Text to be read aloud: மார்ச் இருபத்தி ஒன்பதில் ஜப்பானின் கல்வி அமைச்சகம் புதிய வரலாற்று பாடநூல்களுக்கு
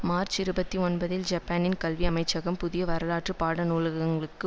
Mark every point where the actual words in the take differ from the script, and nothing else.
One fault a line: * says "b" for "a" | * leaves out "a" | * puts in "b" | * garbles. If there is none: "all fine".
all fine